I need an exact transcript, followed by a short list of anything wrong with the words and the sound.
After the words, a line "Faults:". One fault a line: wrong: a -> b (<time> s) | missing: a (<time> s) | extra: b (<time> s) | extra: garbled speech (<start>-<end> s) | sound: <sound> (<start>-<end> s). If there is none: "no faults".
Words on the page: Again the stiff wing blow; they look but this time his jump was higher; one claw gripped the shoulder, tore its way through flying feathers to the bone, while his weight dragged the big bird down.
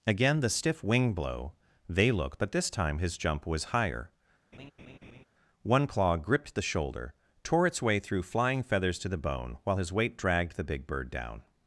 Again the stiff wing blow; they look but this time his jump was higher; one claw gripped the shoulder, tore its way through flying feathers to the bone, while his weight dragged the big bird down.
Faults:
sound: laugh (4.5-5.2 s)